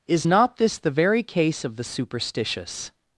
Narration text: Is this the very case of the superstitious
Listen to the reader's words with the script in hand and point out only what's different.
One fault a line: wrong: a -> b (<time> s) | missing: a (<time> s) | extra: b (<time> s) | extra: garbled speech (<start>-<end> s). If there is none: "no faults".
extra: not (0.2 s)